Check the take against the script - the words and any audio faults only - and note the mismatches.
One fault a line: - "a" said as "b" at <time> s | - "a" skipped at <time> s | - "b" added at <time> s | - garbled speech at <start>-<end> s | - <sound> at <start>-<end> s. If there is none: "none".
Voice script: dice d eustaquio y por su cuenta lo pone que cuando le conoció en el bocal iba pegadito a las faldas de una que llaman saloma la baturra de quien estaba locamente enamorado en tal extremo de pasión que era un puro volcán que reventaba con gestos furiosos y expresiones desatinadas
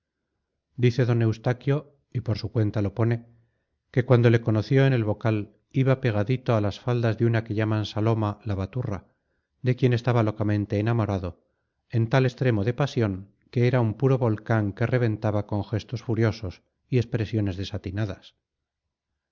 none